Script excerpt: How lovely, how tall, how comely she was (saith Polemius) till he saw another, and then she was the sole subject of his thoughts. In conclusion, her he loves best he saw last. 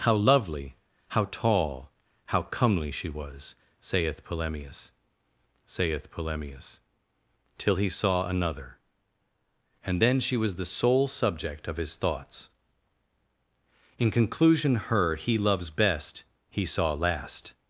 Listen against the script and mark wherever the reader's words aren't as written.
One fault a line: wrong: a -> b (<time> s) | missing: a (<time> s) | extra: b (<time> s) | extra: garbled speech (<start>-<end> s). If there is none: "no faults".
extra: saith Polemius (5.6 s)